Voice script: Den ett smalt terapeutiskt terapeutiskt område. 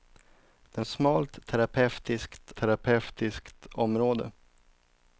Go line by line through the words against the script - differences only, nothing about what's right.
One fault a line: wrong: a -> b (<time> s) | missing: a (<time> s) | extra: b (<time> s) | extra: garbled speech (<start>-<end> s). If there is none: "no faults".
no faults